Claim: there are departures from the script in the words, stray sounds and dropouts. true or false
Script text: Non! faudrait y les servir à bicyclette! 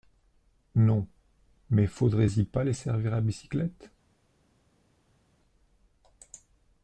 true